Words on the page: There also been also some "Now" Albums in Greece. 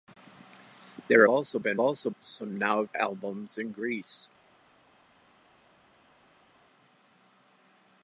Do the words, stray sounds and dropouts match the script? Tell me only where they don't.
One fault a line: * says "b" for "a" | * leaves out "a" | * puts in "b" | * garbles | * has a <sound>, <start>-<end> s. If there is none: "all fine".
all fine